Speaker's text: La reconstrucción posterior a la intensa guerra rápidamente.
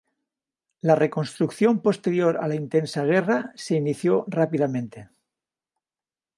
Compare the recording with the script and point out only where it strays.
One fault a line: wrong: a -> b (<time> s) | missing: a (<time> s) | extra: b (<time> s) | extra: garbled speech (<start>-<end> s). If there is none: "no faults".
extra: se inició (3.5 s)